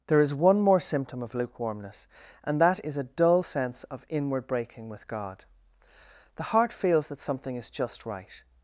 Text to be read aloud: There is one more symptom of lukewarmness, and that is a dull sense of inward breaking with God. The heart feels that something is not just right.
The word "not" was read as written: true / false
false